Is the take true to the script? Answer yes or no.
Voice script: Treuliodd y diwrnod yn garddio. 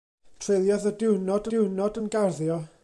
no